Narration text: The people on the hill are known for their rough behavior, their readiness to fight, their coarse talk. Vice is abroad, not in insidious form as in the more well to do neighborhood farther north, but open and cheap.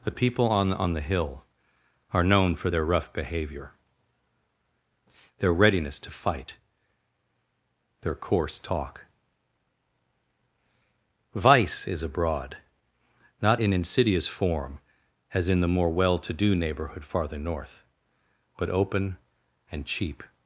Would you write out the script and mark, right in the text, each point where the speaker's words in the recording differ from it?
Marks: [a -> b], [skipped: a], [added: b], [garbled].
The people on [added: on] the hill are known for their rough behavior, their readiness to fight, their coarse talk. Vice is abroad, not in insidious form as in the more well to do neighborhood farther north, but open and cheap.